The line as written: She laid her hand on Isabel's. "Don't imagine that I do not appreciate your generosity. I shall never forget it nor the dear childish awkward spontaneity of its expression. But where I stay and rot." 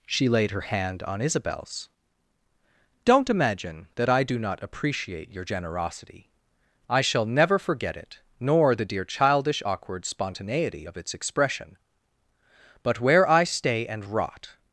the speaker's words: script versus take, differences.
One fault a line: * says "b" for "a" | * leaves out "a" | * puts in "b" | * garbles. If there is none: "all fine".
all fine